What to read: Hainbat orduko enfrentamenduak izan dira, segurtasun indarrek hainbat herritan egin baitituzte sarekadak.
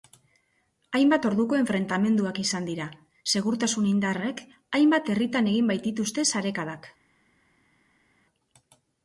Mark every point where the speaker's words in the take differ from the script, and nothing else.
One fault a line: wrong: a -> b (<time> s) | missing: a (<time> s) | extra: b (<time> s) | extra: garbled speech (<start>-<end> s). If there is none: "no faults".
no faults